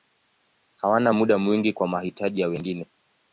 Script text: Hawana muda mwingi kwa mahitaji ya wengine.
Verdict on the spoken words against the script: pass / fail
pass